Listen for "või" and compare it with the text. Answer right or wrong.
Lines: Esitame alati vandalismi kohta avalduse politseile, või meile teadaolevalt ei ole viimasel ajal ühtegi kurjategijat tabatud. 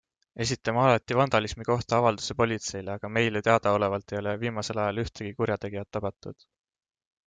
wrong